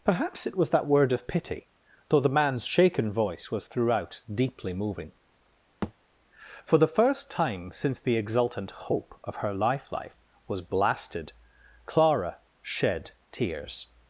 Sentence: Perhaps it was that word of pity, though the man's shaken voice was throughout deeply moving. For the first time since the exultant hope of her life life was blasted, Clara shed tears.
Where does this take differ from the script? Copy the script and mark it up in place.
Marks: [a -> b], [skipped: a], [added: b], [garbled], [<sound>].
Perhaps it was that word of pity, though the man's shaken voice was throughout deeply moving. [thud] For the first time since the exultant hope of her life life was blasted, Clara shed tears.